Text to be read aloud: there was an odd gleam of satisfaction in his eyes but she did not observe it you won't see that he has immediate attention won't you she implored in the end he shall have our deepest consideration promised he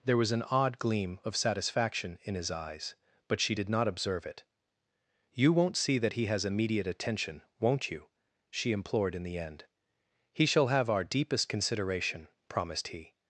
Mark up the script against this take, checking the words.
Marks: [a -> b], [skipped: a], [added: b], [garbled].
there was an odd gleam of satisfaction in his eyes but she did not observe it you won't see that he has immediate attention won't you she implored in the end he shall have our deepest consideration promised he